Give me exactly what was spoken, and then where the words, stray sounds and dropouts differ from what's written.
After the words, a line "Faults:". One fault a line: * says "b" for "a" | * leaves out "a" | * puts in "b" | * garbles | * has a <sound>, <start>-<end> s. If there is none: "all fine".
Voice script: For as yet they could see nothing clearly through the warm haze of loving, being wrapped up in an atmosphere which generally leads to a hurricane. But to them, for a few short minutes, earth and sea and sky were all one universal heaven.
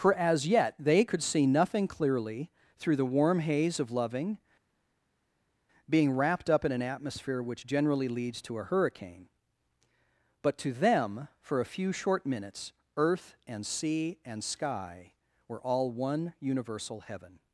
For as yet they could see nothing clearly through the warm haze of loving, being wrapped up in an atmosphere which generally leads to a hurricane. But to them, for a few short minutes, earth and sea and sky were all one universal heaven.
Faults:
all fine